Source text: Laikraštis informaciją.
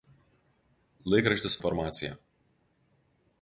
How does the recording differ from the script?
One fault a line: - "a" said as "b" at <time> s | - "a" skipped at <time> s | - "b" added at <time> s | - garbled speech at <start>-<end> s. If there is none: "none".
none